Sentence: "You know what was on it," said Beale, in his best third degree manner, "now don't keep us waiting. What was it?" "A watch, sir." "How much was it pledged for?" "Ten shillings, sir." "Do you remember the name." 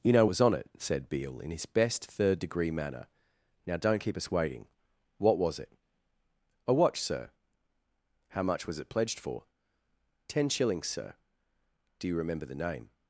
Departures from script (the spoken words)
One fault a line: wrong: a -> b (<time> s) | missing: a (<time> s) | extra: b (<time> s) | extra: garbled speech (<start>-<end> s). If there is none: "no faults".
missing: what (0.2 s)